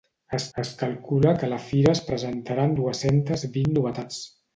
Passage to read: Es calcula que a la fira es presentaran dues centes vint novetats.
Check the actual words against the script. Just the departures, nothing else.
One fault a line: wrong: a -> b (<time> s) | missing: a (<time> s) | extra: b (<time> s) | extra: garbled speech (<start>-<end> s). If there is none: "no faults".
extra: es (0.6 s)